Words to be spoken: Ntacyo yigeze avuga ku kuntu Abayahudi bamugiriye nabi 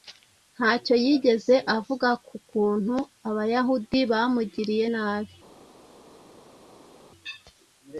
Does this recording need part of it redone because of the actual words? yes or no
no